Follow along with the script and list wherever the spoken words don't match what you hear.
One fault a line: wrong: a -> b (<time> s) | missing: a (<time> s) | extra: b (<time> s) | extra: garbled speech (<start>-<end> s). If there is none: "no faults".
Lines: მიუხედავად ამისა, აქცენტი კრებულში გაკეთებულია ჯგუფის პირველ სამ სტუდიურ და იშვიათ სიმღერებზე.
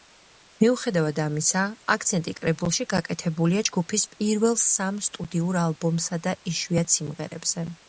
extra: ალბომსა (5.6 s)